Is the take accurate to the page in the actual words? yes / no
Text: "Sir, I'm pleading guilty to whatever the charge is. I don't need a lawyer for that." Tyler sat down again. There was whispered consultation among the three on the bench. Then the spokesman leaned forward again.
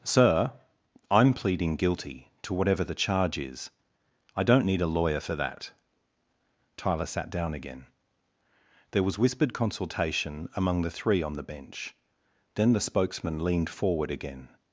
yes